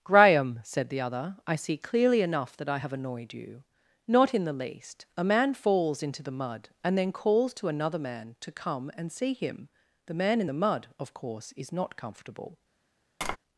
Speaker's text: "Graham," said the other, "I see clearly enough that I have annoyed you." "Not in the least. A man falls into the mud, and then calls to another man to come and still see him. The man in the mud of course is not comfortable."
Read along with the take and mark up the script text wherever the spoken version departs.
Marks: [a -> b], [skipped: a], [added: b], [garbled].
"Graham," said the other, "I see clearly enough that I have annoyed you." "Not in the least. A man falls into the mud, and then calls to another man to come and [skipped: still] see him. The man in the mud of course is not comfortable."